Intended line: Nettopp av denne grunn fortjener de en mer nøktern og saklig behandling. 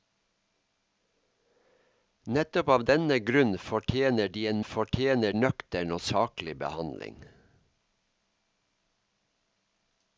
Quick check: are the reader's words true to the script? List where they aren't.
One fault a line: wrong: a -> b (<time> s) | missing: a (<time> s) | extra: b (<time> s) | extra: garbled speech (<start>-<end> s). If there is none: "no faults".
wrong: mer -> fortjener (4.6 s)